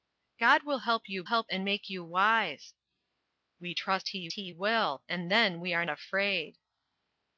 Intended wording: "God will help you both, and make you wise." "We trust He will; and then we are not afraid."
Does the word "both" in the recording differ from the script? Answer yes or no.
yes